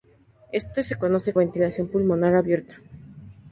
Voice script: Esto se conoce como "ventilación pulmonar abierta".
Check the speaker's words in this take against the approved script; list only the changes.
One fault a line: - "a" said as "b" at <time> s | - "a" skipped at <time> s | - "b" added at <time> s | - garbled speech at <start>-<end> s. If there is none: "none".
- "como" skipped at 1.4 s